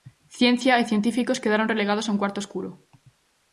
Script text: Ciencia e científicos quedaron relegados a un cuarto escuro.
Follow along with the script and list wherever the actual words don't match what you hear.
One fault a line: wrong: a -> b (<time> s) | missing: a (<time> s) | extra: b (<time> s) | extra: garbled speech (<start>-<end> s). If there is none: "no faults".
no faults